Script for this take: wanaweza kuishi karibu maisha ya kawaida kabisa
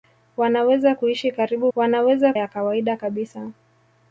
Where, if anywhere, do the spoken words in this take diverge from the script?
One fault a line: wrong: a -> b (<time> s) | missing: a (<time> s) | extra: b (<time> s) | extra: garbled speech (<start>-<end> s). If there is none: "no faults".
wrong: maisha -> wanaweza (1.8 s)